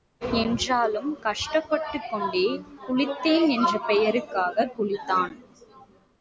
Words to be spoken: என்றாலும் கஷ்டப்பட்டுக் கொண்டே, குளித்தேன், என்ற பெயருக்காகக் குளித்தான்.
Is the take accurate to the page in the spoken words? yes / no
yes